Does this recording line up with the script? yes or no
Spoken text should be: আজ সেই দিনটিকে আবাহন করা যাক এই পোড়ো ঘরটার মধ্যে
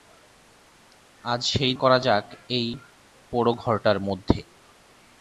no